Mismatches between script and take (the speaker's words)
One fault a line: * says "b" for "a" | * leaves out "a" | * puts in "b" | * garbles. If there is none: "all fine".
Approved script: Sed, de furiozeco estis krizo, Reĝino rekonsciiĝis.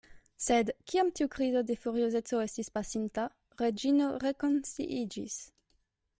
* puts in "kiam tiu krizo"
* says "pasinta" for "krizo"